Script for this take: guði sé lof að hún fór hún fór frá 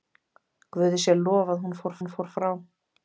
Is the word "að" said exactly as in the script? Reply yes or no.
yes